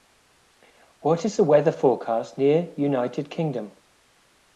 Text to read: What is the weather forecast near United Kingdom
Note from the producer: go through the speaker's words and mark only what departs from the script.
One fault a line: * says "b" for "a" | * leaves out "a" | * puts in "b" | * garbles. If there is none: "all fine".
all fine